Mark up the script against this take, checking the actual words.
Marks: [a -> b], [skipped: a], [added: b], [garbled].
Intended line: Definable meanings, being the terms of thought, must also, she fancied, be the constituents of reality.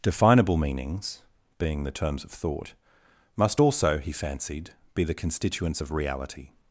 Definable meanings, being the terms of thought, must also, [she -> he] fancied, be the constituents of reality.